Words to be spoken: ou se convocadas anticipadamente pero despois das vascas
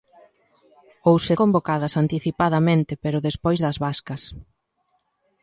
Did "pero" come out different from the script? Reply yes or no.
no